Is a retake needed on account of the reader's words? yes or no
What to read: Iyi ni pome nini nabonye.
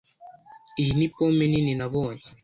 no